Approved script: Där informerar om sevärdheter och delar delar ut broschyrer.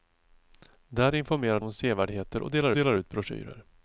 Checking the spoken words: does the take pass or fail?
pass